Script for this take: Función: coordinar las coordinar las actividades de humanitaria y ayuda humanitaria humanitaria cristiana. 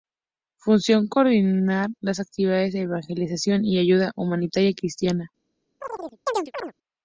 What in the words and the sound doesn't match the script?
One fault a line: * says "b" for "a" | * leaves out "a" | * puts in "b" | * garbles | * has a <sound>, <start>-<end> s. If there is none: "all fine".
* leaves out "coordinar las"
* says "evangelización" for "humanitaria"
* leaves out "humanitaria"
* has a chirp, 5.8-6.7 s